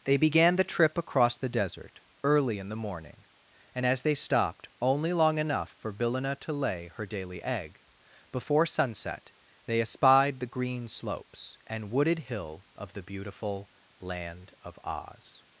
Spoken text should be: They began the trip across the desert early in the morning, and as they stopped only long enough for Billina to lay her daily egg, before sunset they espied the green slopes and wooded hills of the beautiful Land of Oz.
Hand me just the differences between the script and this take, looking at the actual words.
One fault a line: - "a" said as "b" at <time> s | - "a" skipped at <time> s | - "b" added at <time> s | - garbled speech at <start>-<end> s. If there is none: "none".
- "hills" said as "hill" at 12.2 s